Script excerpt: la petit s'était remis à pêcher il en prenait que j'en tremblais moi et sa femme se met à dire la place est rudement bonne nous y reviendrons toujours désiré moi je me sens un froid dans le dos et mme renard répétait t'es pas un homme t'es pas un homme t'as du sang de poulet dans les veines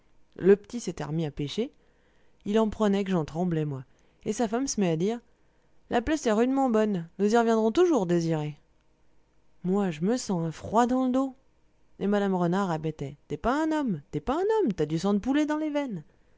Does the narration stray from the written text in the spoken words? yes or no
yes